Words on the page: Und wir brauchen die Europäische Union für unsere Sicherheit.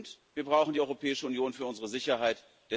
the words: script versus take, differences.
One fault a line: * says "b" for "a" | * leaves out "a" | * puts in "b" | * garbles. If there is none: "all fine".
all fine